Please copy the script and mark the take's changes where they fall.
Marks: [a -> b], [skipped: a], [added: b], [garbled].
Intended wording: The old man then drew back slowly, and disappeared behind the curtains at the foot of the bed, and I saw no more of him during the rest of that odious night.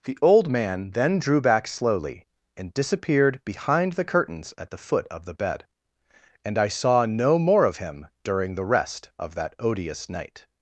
The old man then drew back slowly, and disappeared behind the curtains at the foot of the bed, and I saw no more of him during the rest of that odious night.